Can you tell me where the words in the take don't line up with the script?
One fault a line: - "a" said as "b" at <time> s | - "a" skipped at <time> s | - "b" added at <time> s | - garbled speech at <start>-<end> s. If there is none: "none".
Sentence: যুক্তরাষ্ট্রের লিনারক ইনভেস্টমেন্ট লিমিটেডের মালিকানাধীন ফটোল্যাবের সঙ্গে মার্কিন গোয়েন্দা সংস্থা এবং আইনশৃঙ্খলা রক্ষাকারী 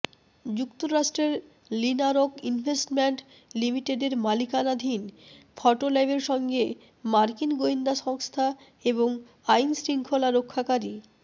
none